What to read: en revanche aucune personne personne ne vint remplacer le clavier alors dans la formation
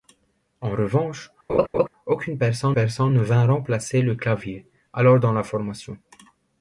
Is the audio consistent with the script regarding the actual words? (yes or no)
yes